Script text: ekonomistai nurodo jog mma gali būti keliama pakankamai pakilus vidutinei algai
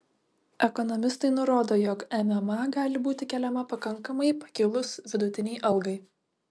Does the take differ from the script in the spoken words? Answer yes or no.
no